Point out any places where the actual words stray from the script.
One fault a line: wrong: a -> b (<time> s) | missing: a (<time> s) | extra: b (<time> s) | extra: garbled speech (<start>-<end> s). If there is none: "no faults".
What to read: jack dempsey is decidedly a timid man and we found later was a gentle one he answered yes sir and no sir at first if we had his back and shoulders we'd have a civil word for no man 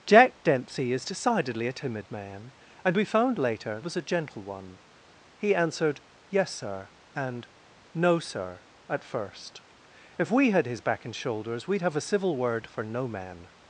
no faults